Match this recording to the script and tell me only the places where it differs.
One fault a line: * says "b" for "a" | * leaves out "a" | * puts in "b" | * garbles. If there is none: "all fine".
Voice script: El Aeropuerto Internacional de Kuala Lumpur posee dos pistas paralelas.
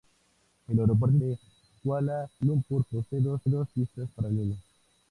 * leaves out "Internacional"
* puts in "dos"